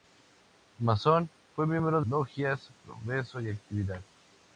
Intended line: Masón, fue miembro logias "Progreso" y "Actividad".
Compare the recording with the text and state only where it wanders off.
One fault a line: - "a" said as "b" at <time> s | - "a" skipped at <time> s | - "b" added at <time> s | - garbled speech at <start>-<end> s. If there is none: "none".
none